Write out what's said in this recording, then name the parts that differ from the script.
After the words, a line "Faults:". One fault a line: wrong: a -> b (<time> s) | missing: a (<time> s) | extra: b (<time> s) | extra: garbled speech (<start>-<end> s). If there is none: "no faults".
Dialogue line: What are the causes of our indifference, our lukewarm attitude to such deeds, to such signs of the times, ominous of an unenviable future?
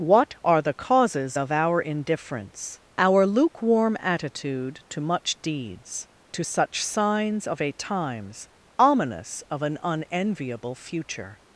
What are the causes of our indifference, our lukewarm attitude to much deeds, to such signs of a times, ominous of an unenviable future?
Faults:
wrong: such -> much (5.0 s)
wrong: the -> a (7.6 s)